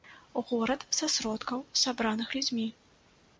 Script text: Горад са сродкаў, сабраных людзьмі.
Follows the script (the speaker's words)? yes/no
yes